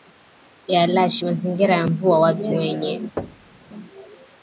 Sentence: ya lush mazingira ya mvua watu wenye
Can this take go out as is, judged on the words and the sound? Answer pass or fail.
fail